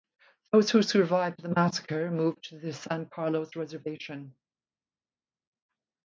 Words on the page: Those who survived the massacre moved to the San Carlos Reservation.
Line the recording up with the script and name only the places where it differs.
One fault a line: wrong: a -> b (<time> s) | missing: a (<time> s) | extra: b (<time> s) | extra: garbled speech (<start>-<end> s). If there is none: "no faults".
no faults